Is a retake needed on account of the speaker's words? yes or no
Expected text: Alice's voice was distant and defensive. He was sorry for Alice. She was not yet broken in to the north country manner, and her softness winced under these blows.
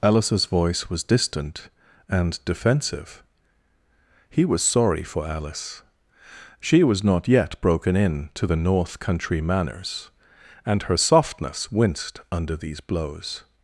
yes